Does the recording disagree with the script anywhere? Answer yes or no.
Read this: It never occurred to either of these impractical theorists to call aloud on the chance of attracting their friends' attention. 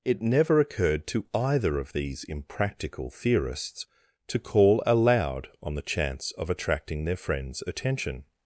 no